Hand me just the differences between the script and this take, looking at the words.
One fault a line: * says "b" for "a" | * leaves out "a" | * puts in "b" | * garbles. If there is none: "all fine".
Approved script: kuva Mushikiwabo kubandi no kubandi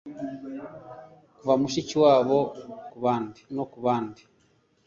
all fine